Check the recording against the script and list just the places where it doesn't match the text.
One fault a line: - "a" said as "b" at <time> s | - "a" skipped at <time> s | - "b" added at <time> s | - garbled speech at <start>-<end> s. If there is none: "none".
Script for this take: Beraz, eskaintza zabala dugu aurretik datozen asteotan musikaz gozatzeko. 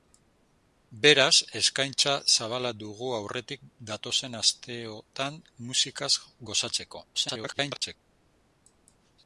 - garbled speech at 7.1-8.0 s